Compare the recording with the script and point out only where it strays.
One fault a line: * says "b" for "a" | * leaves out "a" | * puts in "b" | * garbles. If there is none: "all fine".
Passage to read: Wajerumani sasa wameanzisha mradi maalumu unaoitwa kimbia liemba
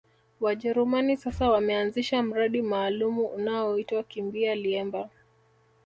all fine